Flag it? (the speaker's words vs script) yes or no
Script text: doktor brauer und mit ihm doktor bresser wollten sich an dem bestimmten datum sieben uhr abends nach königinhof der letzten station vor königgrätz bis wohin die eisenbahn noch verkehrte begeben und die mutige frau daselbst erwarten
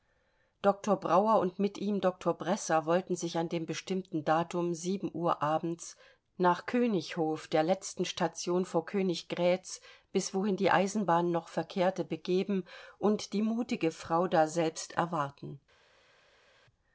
no